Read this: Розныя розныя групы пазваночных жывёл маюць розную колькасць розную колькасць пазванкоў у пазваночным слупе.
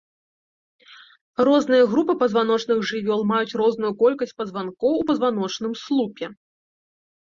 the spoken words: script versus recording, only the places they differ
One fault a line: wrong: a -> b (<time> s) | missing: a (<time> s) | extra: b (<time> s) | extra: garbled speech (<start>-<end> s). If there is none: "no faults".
missing: розныя (1.8 s)
missing: розную колькасць (4.4 s)